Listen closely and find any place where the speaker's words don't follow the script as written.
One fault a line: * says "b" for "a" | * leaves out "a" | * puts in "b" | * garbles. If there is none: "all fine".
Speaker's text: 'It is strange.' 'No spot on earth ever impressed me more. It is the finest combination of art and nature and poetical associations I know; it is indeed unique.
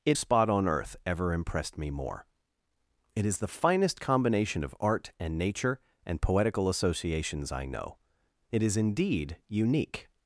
* leaves out "is strange No"